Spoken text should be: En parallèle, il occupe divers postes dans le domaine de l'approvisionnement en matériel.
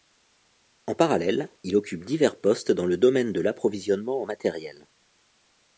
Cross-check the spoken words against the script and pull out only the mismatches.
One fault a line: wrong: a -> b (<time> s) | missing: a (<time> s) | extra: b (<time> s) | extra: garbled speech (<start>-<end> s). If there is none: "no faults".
no faults